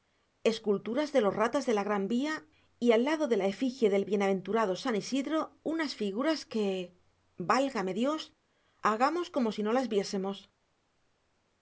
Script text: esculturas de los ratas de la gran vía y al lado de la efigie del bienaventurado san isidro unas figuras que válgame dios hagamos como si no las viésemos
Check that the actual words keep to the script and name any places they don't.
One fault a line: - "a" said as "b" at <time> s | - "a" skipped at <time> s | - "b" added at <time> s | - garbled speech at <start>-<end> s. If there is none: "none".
none